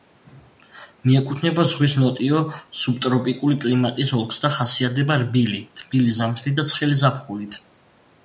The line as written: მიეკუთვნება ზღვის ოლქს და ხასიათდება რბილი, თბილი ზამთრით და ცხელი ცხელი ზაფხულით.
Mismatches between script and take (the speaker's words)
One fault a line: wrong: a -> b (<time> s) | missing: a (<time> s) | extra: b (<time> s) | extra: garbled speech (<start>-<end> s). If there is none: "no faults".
extra: ნოტიო სუბტროპიკული კლიმატის (2.0 s)
missing: ცხელი (7.0 s)